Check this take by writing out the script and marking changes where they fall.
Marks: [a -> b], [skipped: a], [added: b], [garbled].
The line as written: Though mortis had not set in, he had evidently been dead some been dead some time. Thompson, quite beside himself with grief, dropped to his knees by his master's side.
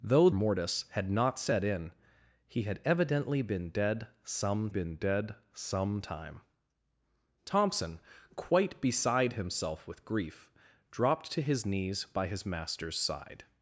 Though mortis had not set in, he had evidently been dead some been dead some time. Thompson, quite beside himself with grief, dropped to his knees by his master's side.